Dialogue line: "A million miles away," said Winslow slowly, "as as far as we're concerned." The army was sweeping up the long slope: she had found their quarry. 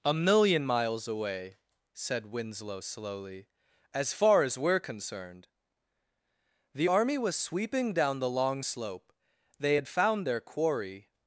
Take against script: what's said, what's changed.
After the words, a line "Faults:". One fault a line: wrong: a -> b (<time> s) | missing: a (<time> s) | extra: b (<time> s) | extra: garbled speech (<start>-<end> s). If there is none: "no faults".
"A million miles away," said Winslow slowly, "as far as we're concerned." The army was sweeping down the long slope: they had found their quarry.
Faults:
missing: as (4.1 s)
wrong: up -> down (7.9 s)
wrong: she -> they (9.6 s)